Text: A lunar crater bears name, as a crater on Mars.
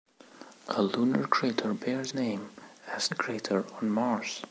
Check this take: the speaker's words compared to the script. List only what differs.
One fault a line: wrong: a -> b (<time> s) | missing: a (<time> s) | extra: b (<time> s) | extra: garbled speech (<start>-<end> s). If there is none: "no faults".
no faults